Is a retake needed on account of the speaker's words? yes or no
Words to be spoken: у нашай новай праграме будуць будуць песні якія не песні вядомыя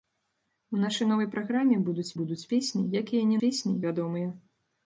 no